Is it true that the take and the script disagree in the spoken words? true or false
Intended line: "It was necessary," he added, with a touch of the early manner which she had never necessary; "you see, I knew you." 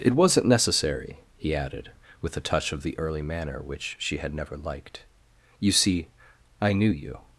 true